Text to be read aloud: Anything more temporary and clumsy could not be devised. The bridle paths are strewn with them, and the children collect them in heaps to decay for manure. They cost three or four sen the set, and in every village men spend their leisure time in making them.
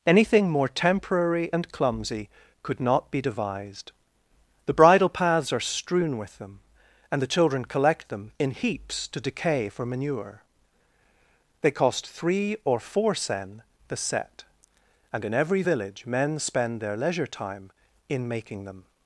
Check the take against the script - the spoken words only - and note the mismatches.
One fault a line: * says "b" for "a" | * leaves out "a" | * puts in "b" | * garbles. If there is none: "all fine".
all fine